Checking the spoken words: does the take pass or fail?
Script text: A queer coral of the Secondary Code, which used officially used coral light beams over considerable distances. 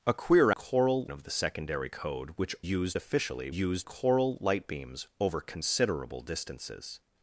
pass